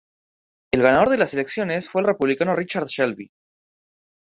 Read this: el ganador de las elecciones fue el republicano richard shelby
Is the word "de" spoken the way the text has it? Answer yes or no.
yes